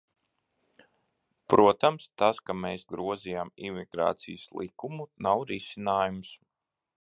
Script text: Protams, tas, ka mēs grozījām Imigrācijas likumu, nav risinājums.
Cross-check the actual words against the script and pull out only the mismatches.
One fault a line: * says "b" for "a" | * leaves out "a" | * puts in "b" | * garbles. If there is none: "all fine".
all fine